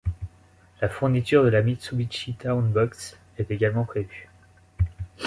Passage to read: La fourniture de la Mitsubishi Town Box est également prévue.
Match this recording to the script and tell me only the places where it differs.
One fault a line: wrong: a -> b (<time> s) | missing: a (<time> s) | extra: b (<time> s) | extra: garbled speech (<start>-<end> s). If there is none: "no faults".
no faults